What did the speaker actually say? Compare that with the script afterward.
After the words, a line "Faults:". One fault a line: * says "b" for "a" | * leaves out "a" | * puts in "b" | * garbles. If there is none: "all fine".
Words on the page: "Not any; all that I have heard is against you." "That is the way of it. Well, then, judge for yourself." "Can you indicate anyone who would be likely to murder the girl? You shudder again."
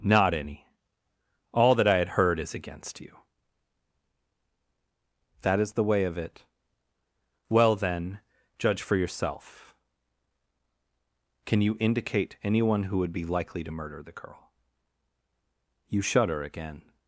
"Not any; all that I had heard is against you." "That is the way of it. Well, then, judge for yourself." "Can you indicate anyone who would be likely to murder the girl? You shudder again."
Faults:
* says "had" for "have"